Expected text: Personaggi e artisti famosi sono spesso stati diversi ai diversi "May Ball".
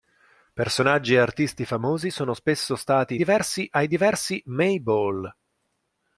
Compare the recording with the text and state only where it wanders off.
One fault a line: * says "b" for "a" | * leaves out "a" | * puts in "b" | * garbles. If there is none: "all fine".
all fine